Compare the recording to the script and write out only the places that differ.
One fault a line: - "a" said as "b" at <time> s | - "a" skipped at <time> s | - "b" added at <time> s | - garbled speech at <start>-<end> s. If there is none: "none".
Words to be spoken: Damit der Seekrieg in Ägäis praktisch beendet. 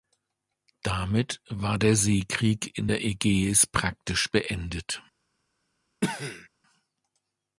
- "war" added at 1.5 s
- "der" added at 2.9 s